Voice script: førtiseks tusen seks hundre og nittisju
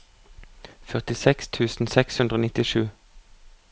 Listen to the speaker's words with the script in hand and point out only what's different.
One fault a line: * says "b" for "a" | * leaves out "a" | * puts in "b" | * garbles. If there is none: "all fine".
all fine